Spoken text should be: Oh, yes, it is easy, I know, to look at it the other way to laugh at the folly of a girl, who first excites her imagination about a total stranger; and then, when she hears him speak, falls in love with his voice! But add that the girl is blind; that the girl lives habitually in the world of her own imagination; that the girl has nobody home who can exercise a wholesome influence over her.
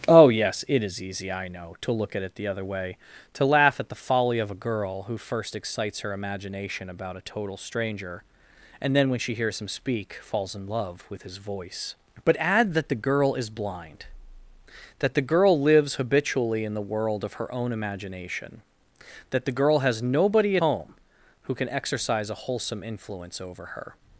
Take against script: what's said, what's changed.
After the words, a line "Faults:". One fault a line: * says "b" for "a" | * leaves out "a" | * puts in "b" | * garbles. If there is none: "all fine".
Oh, yes, it is easy, I know, to look at it the other way to laugh at the folly of a girl, who first excites her imagination about a total stranger; and then, when she hears him speak, falls in love with his voice! But add that the girl is blind; that the girl lives habitually in the world of her own imagination; that the girl has nobody home who can exercise a wholesome influence over her.
Faults:
all fine